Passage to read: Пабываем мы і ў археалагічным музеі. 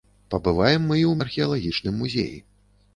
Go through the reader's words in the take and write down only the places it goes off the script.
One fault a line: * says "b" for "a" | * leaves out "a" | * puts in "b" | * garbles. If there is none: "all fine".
all fine